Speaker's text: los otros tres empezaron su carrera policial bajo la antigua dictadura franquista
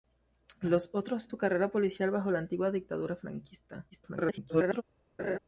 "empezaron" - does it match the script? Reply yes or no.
no